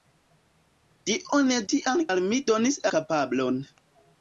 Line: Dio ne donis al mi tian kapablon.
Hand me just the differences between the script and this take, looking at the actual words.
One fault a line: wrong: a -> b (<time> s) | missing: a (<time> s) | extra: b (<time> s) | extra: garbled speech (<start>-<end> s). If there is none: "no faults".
wrong: donis -> tian (1.7 s)
wrong: tian -> donis (2.5 s)